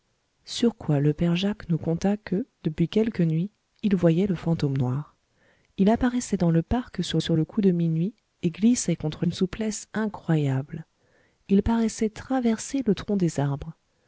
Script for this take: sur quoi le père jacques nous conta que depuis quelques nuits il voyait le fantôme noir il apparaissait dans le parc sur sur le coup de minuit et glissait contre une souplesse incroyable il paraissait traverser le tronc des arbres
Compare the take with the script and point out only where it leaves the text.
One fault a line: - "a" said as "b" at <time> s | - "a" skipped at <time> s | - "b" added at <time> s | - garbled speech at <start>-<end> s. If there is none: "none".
none